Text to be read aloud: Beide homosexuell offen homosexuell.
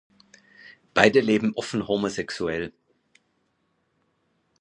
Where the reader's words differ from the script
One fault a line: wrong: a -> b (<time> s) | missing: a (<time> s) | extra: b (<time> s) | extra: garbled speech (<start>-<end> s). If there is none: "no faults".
wrong: homosexuell -> leben (1.2 s)